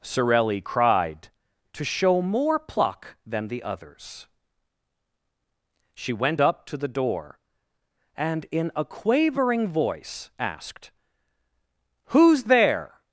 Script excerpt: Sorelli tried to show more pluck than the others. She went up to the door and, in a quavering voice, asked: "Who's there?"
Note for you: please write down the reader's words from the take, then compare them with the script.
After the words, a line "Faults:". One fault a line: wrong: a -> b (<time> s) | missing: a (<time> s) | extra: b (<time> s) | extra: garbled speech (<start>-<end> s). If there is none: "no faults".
Sorelli cried to show more pluck than the others. She went up to the door and, in a quavering voice, asked: "Who's there?"
Faults:
wrong: tried -> cried (0.6 s)